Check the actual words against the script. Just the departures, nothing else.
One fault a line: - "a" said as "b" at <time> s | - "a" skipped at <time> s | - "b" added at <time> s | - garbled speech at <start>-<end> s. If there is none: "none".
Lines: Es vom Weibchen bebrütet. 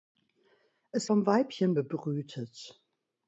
none